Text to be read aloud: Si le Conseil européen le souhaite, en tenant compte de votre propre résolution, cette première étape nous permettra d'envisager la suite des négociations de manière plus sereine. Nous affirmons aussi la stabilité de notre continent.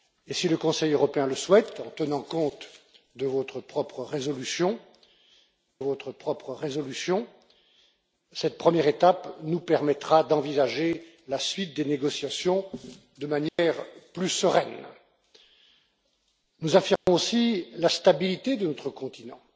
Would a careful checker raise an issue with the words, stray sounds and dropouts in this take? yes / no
yes